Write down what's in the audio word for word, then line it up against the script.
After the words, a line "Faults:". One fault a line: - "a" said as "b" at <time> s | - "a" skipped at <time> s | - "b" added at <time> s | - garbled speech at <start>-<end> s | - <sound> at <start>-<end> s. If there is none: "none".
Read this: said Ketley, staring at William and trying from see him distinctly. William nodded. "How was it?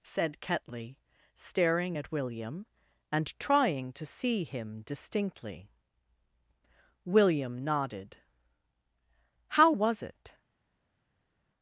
said Ketley, staring at William and trying to see him distinctly. William nodded. "How was it?
Faults:
- "from" said as "to" at 3.9 s